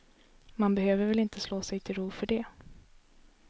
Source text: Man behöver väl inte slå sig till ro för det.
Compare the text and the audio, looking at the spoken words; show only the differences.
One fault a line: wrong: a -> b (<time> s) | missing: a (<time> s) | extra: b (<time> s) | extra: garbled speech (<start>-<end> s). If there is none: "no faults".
no faults